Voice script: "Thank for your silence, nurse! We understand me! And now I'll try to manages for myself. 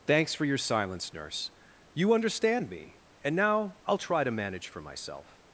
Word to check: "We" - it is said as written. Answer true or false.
false